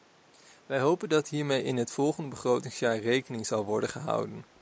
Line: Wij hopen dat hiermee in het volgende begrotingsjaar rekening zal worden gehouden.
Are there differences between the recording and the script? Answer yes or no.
no